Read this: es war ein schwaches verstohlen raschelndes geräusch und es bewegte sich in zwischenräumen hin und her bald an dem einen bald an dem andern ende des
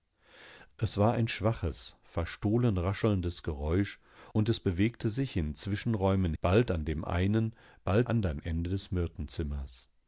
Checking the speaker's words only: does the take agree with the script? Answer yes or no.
no